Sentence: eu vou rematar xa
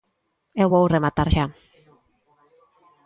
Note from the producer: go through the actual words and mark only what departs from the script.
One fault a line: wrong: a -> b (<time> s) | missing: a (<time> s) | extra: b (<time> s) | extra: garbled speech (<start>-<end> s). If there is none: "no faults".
no faults